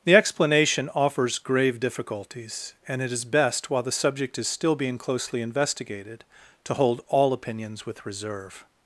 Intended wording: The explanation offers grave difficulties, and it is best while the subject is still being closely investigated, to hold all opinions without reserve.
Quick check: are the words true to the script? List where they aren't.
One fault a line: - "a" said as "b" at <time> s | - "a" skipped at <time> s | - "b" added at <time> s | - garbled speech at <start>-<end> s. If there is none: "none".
- "without" said as "with" at 7.8 s